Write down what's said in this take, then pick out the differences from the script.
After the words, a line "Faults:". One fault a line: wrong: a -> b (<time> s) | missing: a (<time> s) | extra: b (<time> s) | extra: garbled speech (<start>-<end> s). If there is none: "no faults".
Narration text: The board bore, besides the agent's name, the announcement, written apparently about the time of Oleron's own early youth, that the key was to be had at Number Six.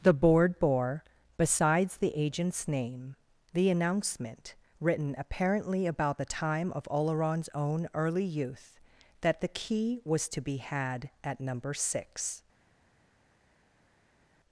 The board bore, besides the agent's name, the announcement, written apparently about the time of Oleron's own early youth, that the key was to be had at Number Six.
Faults:
no faults